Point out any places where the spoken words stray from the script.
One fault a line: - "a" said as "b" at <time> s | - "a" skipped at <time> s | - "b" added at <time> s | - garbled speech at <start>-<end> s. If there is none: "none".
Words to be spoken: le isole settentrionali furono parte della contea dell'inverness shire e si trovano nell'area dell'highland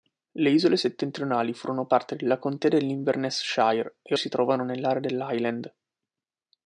none